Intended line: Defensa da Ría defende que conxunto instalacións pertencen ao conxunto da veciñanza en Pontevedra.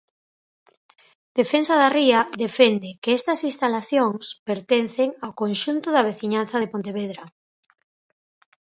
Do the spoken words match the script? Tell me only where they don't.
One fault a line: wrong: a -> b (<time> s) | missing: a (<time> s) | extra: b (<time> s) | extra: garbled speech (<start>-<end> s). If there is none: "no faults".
wrong: conxunto -> estas (3.2 s)
wrong: en -> de (6.6 s)